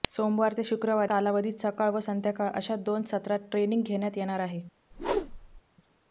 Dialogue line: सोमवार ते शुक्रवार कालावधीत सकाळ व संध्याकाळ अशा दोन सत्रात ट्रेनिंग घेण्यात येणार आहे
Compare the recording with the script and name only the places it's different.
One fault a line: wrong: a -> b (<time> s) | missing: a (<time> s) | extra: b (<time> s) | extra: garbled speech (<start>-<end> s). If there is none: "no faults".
no faults